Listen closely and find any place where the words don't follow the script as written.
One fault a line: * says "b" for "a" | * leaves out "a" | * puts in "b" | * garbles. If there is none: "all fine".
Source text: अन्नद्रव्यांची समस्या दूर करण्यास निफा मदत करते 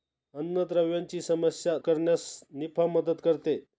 * leaves out "दूर"